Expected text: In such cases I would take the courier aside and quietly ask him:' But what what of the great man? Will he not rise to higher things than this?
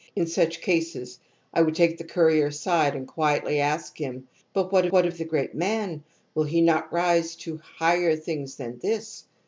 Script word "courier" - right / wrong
right